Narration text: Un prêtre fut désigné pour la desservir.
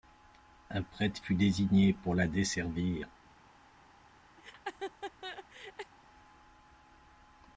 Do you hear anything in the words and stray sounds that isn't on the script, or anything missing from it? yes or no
yes